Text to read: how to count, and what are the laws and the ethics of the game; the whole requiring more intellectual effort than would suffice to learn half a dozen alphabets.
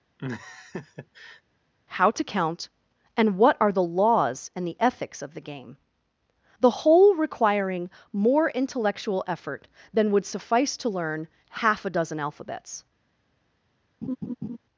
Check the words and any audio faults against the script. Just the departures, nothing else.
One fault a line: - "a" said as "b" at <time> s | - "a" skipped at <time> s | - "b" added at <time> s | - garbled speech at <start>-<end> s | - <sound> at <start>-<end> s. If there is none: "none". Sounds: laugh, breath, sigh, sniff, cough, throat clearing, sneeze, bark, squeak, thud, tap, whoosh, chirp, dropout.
- laugh at 0.2-1.4 s
- laugh at 14.0-14.6 s